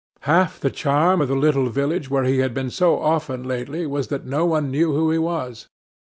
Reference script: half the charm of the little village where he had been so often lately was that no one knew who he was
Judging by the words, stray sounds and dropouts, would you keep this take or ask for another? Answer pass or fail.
pass